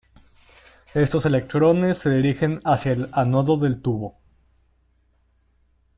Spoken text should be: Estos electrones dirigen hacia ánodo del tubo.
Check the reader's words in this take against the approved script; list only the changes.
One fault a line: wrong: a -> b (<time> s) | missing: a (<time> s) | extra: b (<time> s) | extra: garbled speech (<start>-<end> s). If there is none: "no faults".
extra: se (2.0 s)
extra: el (2.9 s)